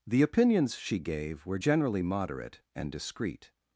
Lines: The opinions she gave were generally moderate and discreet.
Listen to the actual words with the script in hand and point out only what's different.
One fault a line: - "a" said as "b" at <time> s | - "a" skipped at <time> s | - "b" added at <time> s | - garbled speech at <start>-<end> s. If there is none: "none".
none